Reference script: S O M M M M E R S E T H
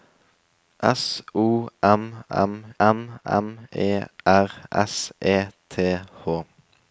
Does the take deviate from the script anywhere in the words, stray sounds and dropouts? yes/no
no